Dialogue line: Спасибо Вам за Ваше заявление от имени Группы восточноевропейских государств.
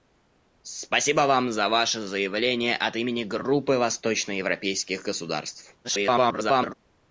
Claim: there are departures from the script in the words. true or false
true